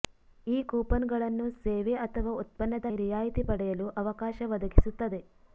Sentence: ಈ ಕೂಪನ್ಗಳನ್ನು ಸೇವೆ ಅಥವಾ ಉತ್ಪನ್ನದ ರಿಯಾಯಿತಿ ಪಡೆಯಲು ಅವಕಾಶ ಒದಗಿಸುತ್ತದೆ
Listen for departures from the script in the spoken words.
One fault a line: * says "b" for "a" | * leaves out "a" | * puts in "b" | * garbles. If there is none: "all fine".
all fine